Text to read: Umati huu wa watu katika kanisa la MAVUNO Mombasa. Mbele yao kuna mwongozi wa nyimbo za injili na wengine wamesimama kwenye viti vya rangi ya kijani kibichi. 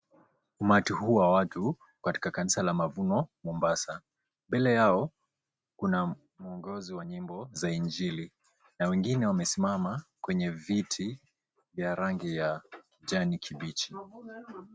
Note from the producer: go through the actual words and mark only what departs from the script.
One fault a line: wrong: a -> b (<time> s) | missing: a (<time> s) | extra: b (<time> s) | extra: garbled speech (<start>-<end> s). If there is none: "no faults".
no faults